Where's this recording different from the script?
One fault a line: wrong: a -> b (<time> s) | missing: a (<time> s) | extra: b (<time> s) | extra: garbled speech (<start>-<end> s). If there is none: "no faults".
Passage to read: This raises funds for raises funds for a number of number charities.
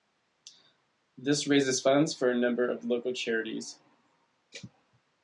missing: raises funds for (2.3 s)
wrong: number -> local (2.8 s)